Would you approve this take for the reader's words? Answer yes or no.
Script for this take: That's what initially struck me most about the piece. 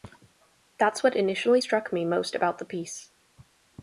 yes